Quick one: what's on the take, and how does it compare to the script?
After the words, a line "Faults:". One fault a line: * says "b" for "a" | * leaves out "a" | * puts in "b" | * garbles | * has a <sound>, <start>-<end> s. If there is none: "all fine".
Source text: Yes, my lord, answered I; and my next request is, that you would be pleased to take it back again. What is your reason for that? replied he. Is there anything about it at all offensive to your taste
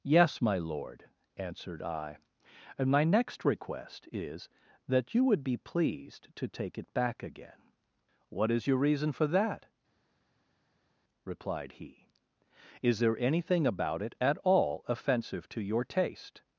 Yes, my lord, answered I; and my next request is, that you would be pleased to take it back again. What is your reason for that? replied he. Is there anything about it at all offensive to your taste
Faults:
all fine